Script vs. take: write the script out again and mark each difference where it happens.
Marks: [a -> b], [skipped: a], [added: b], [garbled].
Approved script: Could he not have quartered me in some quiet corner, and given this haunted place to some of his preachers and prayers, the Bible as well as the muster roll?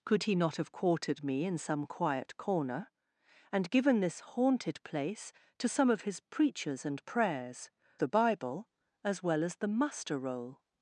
Could he not have quartered me in some quiet corner, and given this haunted place to some of his preachers and prayers, the Bible as well as the muster roll?